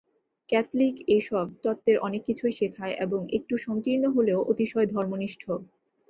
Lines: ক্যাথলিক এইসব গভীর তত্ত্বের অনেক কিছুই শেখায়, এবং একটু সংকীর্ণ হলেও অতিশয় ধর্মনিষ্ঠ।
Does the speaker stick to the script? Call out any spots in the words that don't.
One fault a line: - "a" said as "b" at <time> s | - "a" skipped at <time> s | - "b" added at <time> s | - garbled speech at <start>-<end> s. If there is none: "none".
- "গভীর" skipped at 1.4 s